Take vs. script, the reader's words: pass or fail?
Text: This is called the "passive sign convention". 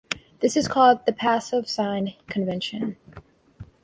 pass